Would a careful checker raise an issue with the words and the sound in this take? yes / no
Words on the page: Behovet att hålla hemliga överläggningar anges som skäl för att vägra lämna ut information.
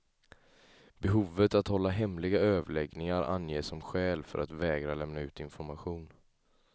no